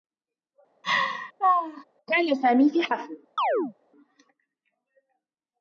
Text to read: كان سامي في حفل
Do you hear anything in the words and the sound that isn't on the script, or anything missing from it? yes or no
yes